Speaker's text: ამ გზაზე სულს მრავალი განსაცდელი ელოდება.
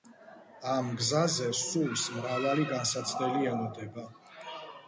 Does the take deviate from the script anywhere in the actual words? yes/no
no